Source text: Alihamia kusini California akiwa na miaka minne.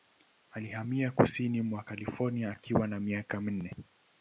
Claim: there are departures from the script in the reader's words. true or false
true